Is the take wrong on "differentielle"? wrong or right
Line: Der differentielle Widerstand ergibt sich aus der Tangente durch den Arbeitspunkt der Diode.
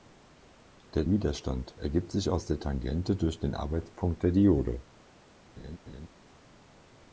wrong